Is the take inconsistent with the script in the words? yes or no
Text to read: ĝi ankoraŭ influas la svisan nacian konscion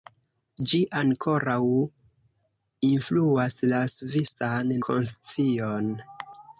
yes